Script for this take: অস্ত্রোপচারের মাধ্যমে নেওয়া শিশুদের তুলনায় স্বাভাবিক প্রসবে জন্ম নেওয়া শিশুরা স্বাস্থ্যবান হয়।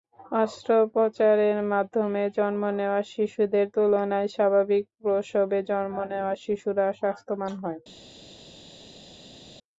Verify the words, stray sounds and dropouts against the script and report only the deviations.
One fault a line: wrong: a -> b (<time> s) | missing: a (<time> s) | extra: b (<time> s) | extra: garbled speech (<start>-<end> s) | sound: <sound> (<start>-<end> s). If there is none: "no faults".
extra: জন্ম (2.4 s)